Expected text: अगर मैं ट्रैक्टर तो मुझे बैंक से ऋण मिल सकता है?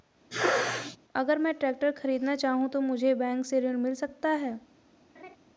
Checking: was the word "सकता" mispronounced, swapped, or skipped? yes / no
no